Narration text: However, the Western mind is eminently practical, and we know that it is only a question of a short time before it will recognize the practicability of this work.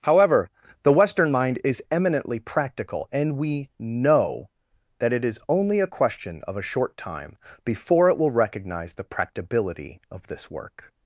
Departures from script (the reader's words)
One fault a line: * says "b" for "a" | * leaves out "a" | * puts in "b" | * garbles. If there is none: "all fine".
all fine